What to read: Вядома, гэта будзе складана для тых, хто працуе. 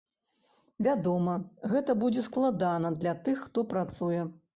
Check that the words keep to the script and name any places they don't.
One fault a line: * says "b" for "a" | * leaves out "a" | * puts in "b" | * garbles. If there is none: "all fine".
all fine